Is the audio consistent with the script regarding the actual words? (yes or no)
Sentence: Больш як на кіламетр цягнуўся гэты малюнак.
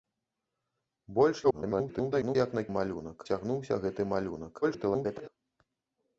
no